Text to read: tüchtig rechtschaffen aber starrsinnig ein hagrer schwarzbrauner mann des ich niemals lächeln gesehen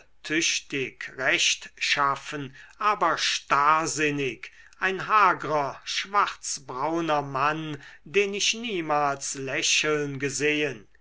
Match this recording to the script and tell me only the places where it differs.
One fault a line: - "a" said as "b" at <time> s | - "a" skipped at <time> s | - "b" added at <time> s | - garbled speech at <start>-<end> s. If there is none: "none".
- "des" said as "den" at 8.1 s